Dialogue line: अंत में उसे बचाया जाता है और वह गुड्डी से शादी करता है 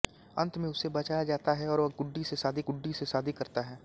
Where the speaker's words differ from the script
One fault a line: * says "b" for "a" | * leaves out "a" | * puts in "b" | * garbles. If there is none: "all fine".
* puts in "गुड्डी से शादी"